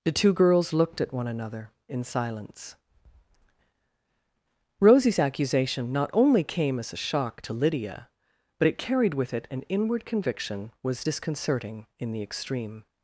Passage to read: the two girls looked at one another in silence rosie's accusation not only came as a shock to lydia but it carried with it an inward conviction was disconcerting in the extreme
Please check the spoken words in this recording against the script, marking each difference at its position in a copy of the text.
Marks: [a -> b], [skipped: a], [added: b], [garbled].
the two girls looked at one another in silence rosie's accusation not only came as a shock to lydia but it carried with it an inward conviction was disconcerting in the extreme